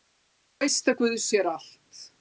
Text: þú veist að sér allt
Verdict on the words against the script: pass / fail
fail